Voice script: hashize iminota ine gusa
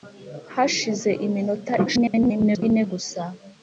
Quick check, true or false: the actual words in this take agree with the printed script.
false